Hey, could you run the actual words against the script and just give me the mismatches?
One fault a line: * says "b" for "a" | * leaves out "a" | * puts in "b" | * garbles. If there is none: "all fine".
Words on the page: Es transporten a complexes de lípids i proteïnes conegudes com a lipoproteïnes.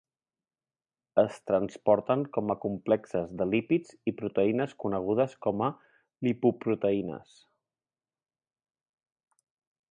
* puts in "com"